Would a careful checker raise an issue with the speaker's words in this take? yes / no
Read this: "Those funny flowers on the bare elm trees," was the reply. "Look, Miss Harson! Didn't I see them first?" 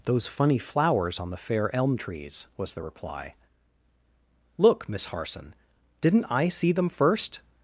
yes